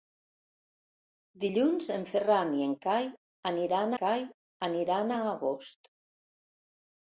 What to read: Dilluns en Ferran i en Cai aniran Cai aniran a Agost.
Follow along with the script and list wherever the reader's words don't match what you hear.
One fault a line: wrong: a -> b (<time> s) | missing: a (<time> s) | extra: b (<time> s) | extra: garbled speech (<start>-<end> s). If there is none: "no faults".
no faults